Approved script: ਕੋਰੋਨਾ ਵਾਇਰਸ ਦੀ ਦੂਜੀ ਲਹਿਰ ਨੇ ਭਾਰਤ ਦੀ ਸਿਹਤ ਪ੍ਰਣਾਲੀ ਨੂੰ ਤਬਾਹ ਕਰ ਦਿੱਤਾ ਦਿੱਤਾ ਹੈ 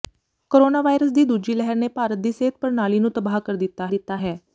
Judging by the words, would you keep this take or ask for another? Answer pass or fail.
pass